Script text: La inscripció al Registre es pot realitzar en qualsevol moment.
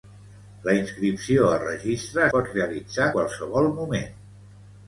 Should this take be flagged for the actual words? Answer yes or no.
yes